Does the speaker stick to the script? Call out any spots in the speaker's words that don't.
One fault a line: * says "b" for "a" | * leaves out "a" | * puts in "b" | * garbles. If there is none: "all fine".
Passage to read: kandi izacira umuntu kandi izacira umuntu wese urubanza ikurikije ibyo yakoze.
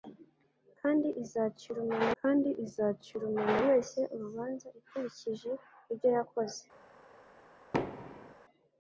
all fine